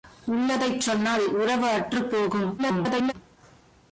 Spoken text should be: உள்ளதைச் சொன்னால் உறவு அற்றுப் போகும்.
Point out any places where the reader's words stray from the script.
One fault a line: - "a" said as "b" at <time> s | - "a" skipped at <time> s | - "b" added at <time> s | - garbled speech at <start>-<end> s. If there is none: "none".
- garbled speech at 2.6-3.1 s